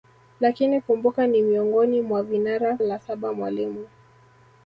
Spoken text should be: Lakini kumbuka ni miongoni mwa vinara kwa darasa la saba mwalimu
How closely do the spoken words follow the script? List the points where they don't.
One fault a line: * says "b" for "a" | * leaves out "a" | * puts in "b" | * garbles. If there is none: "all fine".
* leaves out "kwa darasa"